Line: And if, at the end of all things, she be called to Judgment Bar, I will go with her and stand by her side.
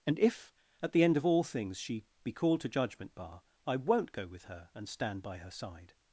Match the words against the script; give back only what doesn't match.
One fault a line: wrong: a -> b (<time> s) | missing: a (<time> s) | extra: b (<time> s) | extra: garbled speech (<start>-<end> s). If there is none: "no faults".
wrong: will -> won't (3.7 s)